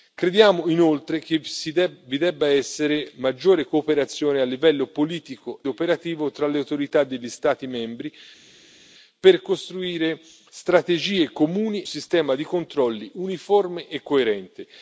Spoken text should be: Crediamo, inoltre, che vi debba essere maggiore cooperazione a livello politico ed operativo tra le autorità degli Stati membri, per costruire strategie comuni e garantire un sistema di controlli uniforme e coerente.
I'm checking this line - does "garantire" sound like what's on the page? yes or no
no